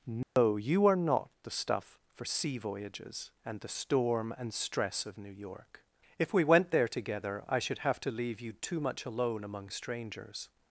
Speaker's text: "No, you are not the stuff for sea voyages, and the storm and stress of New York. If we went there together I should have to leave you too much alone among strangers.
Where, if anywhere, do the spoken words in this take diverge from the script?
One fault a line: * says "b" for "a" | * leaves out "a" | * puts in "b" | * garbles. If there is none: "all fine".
all fine